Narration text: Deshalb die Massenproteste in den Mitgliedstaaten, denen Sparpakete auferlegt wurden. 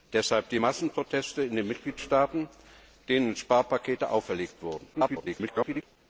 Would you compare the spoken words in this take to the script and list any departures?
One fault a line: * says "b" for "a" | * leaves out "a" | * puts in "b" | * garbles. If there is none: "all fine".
* garbles